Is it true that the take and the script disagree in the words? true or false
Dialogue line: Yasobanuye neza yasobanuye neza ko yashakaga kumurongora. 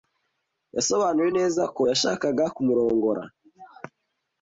true